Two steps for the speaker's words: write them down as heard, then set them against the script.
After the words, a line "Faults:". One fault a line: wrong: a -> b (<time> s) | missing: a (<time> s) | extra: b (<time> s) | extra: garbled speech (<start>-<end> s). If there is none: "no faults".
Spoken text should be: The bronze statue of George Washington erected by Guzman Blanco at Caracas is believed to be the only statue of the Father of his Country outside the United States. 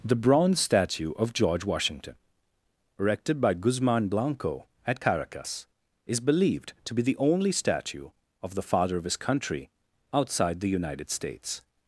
The bronze statue of George Washington erected by Guzman Blanco at Caracas is believed to be the only statue of the Father of his Country outside the United States.
Faults:
no faults